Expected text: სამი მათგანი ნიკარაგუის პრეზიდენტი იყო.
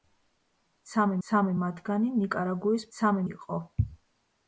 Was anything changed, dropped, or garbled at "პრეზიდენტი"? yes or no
yes